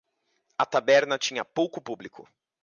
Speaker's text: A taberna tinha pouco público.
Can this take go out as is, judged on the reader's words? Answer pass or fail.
pass